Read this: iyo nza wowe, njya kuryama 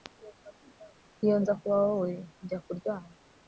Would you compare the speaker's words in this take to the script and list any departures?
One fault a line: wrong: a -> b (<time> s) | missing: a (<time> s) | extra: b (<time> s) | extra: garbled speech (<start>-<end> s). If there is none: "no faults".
extra: kuba (1.6 s)